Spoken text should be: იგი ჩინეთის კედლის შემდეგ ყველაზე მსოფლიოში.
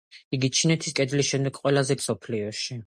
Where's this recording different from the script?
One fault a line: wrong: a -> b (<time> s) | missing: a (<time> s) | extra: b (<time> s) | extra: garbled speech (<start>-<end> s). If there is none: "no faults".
no faults